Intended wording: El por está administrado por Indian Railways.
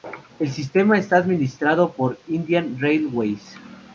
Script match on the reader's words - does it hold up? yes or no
no